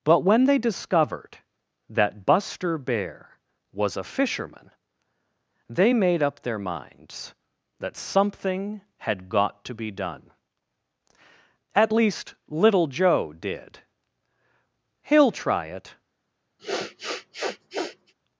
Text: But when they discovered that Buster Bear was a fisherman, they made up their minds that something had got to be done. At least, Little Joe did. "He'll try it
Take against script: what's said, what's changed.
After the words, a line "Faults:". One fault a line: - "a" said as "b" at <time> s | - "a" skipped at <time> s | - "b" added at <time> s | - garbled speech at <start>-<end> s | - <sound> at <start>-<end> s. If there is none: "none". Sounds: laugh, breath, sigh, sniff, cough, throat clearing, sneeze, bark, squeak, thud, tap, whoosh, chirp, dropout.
But when they discovered that Buster Bear was a fisherman, they made up their minds that something had got to be done. At least, Little Joe did. "He'll try it
Faults:
- sniff at 16.6-18.1 s